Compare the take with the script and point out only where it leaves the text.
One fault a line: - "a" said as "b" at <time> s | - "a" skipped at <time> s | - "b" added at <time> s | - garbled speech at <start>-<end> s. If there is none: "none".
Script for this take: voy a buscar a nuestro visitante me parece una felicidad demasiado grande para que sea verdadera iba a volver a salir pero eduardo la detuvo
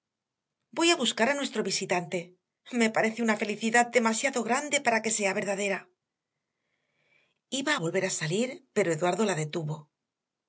none